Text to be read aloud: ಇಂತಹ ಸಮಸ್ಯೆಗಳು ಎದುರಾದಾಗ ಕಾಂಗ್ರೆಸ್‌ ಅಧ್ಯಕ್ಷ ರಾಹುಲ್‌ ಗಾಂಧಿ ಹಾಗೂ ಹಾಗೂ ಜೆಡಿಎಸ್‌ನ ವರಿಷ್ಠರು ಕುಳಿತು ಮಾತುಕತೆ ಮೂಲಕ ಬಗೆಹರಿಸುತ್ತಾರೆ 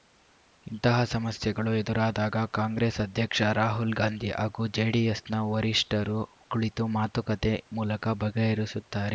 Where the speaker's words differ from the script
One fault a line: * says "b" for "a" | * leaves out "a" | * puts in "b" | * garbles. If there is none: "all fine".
* leaves out "ಹಾಗೂ"